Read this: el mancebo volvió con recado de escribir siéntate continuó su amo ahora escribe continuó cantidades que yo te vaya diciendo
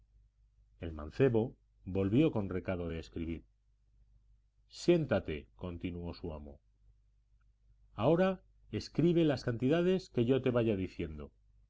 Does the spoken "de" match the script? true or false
true